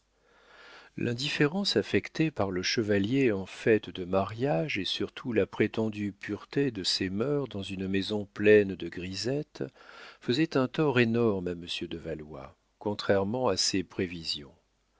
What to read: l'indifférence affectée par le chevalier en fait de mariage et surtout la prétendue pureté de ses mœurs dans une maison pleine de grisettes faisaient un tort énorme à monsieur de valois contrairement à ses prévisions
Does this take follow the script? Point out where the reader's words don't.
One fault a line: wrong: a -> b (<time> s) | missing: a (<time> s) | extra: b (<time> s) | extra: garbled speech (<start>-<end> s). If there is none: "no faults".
no faults